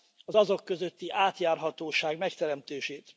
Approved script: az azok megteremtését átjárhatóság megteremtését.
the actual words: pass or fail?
fail